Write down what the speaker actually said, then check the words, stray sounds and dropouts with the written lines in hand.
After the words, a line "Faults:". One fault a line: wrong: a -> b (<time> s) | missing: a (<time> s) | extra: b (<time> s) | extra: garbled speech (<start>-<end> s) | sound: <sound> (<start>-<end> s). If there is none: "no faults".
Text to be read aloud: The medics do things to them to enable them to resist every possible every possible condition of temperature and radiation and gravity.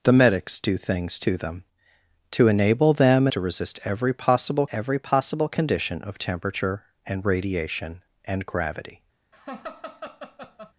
The medics do things to them to enable them to resist every possible every possible condition of temperature and radiation and gravity.
Faults:
sound: laugh (9.3-10.7 s)